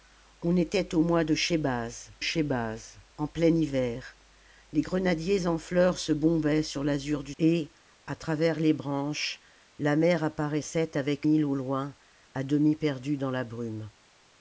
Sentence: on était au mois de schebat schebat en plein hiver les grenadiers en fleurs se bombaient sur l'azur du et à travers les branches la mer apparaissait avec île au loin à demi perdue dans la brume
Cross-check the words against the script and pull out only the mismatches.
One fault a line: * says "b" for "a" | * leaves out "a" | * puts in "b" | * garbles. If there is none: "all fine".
all fine